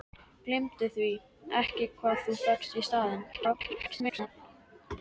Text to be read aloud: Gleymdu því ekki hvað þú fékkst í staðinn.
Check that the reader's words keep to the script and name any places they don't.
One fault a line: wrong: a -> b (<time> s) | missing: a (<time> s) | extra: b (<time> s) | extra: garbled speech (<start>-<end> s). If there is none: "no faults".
extra: garbled speech (3.3-4.3 s)